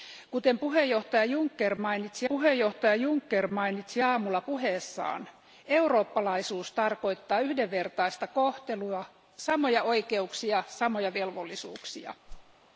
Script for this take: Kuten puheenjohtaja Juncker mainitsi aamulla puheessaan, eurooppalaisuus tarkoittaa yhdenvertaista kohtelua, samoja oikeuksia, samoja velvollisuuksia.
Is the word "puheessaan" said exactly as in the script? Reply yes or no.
yes